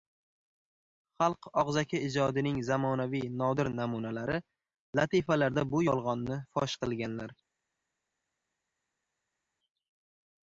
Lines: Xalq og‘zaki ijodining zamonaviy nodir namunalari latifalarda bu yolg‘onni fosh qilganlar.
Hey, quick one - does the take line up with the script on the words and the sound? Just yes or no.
yes